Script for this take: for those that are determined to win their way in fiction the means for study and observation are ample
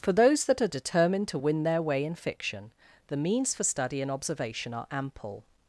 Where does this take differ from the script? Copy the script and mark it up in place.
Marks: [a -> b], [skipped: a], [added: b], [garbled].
for those that are determined to win their way in fiction the means for study and observation are ample